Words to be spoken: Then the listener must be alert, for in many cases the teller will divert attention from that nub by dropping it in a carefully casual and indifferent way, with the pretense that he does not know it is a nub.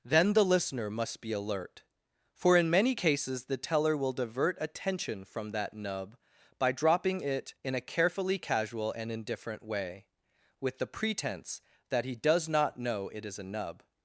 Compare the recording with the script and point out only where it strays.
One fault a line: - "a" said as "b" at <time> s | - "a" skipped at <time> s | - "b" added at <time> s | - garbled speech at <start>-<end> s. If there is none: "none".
none